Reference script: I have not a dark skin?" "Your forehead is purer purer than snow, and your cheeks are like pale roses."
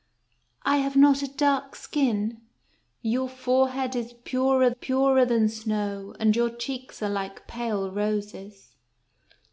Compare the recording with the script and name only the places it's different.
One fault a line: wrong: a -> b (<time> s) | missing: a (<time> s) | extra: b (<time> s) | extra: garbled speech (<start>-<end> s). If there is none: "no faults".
no faults